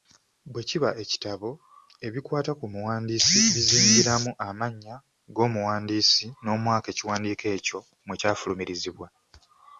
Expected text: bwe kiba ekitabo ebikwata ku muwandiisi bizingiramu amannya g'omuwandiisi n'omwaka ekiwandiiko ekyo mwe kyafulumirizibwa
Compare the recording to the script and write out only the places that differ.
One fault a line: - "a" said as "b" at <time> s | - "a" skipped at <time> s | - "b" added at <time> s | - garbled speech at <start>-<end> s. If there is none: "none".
none